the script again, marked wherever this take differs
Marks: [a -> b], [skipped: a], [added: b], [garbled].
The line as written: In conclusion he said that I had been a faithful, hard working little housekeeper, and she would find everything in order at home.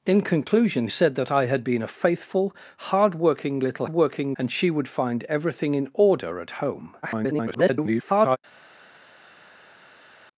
In conclusion [skipped: he] said that I had been a faithful, hard working little [housekeeper, -> working] and she would find everything in order at home. [garbled]